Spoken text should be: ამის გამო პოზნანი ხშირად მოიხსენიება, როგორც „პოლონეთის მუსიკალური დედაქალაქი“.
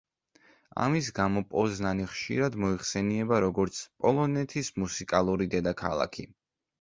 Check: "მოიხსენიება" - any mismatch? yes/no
no